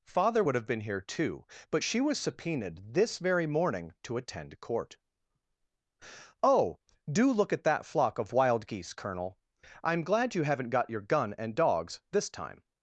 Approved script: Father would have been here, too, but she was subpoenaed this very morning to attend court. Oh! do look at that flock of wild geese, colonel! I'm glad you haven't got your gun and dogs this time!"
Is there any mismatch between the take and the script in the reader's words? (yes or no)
no